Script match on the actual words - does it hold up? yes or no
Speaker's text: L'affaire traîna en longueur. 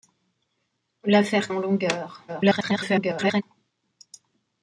no